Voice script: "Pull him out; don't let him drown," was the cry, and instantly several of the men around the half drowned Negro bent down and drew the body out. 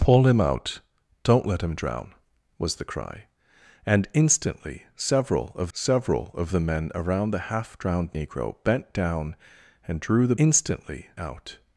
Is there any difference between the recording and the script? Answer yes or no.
yes